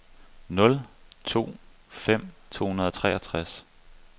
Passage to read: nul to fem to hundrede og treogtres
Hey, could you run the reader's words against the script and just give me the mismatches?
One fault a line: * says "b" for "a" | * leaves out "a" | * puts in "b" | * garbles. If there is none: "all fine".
all fine